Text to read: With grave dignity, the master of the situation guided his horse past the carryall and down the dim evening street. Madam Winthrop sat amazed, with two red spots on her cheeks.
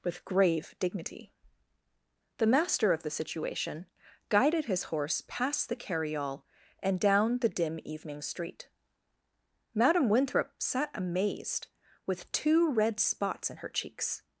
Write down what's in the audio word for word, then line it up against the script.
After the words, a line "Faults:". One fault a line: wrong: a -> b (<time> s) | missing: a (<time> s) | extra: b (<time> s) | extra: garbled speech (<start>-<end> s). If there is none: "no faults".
With grave dignity, the master of the situation guided his horse past the carryall and down the dim evening street. Madam Winthrop sat amazed, with two red spots in her cheeks.
Faults:
wrong: on -> in (13.5 s)